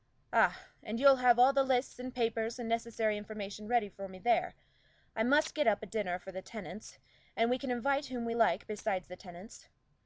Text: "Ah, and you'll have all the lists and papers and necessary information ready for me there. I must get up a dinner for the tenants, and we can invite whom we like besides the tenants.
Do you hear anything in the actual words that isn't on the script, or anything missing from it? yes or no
no